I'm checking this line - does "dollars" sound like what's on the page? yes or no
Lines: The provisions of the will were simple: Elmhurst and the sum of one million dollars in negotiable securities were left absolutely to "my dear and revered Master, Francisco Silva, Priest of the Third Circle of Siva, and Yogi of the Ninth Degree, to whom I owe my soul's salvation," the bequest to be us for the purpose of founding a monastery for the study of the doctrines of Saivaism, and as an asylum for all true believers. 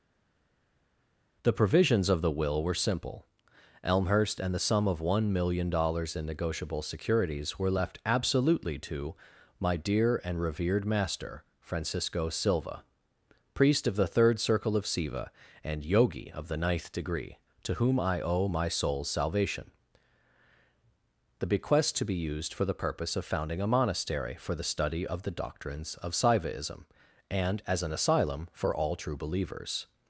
yes